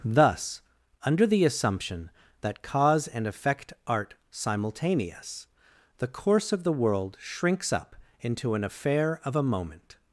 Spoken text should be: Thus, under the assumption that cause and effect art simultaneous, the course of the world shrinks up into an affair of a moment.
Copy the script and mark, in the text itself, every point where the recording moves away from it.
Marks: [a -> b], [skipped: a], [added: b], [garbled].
Thus, under the assumption that cause and effect art simultaneous, the course of the world shrinks up into an affair of a moment.